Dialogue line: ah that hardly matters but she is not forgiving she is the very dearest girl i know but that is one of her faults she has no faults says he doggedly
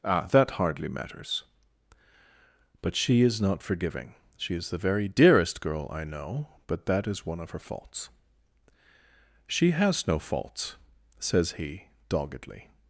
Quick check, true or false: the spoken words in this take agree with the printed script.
true